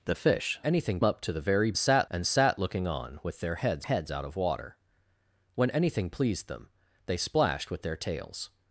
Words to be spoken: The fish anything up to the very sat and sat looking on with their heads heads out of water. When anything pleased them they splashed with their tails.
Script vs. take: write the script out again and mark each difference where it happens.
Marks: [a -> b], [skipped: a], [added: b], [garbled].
The fish anything up to the very sat and sat looking on with their heads heads out of water. When anything pleased them they splashed with their tails.